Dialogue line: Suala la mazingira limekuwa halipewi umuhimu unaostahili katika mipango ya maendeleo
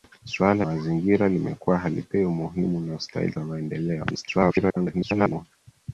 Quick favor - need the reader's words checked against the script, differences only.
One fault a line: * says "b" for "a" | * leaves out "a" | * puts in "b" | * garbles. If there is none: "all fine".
* leaves out "la"
* leaves out "katika mipango"
* garbles